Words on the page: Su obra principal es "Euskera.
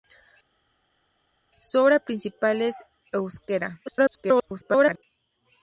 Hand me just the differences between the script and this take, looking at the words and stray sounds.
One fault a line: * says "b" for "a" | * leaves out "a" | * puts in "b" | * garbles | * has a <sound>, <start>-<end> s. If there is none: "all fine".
* garbles